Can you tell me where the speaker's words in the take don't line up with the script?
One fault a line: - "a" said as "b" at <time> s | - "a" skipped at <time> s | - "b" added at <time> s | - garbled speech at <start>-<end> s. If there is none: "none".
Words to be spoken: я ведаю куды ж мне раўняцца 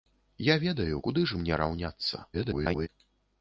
- garbled speech at 2.3-2.9 s